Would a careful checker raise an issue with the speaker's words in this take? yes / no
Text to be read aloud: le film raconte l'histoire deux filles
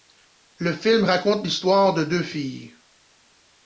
yes